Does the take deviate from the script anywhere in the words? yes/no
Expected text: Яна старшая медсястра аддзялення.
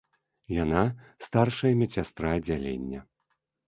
no